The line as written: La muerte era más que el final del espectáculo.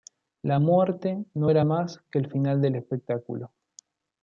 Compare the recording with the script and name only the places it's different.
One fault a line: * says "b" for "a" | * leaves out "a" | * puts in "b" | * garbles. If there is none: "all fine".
* puts in "no"